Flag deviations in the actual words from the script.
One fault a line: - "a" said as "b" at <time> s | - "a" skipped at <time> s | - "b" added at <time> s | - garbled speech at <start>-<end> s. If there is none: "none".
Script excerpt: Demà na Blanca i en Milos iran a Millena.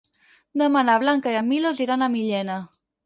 none